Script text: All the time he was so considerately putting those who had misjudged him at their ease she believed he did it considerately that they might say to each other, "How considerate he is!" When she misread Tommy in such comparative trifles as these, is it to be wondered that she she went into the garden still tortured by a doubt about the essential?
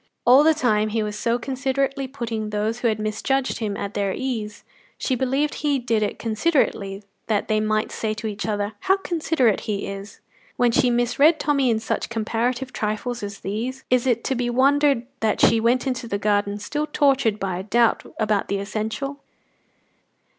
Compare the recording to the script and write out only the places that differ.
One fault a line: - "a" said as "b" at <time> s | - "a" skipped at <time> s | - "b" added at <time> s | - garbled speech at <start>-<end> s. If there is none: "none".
- "she" skipped at 15.6 s